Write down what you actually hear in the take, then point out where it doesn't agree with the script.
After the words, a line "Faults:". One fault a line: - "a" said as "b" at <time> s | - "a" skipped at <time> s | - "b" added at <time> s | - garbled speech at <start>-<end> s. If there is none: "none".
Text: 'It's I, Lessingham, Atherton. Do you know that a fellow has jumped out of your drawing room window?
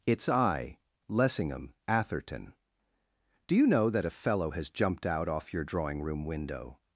'It's I, Lessingham, Atherton. Do you know that a fellow has jumped out off your drawing room window?
Faults:
- "of" said as "off" at 5.3 s